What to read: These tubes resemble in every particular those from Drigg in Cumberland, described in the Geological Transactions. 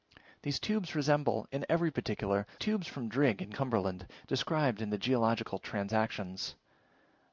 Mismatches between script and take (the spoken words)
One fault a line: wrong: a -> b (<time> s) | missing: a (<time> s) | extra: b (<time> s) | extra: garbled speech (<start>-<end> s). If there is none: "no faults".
wrong: those -> tubes (2.6 s)